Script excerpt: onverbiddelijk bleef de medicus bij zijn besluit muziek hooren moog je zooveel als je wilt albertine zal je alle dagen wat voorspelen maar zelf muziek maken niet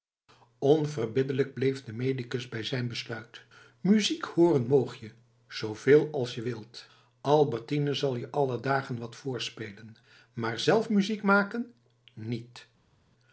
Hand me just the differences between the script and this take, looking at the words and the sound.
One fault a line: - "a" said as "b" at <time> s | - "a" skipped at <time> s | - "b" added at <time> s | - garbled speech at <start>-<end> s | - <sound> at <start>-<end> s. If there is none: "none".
none